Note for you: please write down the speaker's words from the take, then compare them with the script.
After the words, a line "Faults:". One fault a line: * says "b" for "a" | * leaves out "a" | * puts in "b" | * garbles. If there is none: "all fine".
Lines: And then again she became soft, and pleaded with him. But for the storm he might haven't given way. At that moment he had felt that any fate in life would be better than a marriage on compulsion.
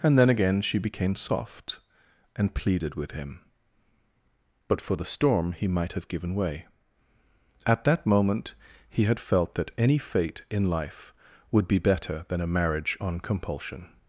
And then again she became soft, and pleaded with him. But for the storm he might have given way. At that moment he had felt that any fate in life would be better than a marriage on compulsion.
Faults:
* says "have" for "haven't"